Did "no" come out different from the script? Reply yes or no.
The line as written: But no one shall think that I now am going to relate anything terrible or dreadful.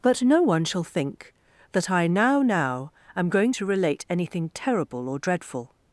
no